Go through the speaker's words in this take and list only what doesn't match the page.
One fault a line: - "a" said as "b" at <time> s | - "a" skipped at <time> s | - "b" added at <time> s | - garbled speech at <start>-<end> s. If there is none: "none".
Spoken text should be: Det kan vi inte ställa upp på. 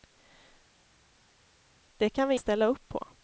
- "inte" skipped at 2.3 s